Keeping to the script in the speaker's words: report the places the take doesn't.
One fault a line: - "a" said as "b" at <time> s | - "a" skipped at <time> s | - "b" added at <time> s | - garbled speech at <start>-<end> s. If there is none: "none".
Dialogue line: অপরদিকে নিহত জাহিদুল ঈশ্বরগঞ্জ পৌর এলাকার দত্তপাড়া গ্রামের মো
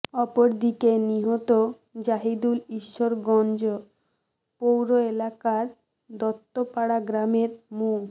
none